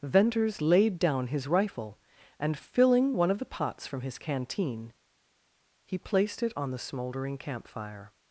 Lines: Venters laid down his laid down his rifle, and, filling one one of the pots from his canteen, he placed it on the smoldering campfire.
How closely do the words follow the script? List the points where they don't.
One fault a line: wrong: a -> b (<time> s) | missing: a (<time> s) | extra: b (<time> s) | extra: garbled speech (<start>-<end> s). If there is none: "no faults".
missing: laid down his (1.5 s)
missing: one (3.3 s)